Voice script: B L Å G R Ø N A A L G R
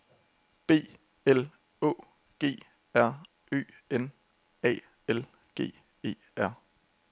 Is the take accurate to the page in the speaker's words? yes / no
no